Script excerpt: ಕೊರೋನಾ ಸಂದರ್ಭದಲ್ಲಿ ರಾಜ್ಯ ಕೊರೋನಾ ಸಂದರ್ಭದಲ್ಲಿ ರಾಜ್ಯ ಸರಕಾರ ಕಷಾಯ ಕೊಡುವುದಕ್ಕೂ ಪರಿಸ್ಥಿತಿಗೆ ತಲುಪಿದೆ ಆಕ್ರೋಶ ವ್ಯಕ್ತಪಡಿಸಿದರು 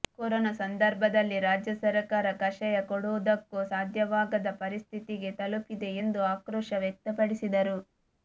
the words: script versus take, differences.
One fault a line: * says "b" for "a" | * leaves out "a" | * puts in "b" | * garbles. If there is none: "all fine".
* leaves out "ಕೊರೋನಾ ಸಂದರ್ಭದಲ್ಲಿ ರಾಜ್ಯ"
* puts in "ಸಾಧ್ಯವಾಗದ"
* puts in "ಎಂದು"